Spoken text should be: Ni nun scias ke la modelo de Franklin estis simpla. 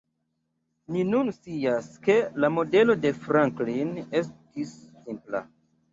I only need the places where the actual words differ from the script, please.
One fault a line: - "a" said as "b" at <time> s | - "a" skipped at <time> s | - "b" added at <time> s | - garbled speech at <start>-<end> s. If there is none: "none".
none